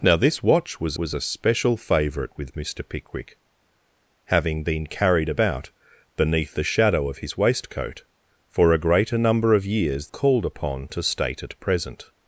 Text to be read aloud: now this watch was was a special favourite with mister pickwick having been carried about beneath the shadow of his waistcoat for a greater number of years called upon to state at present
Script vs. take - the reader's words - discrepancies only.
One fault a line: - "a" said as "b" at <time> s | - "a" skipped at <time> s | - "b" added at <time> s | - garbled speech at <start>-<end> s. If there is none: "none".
none